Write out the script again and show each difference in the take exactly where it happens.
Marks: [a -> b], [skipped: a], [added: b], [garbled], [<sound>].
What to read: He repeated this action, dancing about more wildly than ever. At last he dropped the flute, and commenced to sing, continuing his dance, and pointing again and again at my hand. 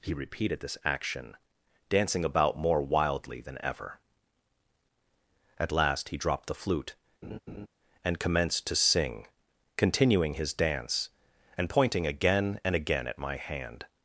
He repeated this action, dancing about more wildly than ever. At last he dropped the flute, [laugh] and commenced to sing, continuing his dance, and pointing again and again at my hand.